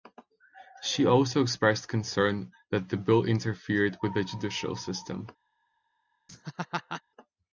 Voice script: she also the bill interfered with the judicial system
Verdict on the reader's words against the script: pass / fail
fail